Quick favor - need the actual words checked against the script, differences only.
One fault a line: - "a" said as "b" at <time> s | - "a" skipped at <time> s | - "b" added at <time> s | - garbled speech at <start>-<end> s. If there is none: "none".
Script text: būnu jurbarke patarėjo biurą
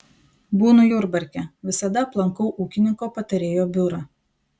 - "visada aplankau ūkininko" added at 1.7 s